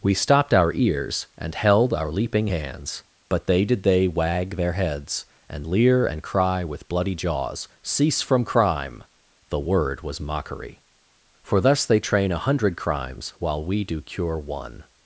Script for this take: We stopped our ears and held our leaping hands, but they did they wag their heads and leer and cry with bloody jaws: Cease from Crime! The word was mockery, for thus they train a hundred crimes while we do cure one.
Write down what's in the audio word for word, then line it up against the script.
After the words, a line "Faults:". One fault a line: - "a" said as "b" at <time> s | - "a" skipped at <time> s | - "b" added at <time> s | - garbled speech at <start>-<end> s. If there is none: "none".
We stopped our ears and held our leaping hands, but they did they wag their heads and leer and cry with bloody jaws: Cease from Crime! The word was mockery, for thus they train a hundred crimes while we do cure one.
Faults:
none